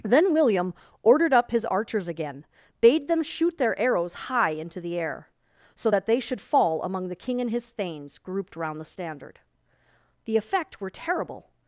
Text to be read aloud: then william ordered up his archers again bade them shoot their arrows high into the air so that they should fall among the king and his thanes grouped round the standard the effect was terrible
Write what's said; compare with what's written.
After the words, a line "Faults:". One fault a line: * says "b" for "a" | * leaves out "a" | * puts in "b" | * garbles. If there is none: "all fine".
then william ordered up his archers again bade them shoot their arrows high into the air so that they should fall among the king and his thanes grouped round the standard the effect were terrible
Faults:
* says "were" for "was"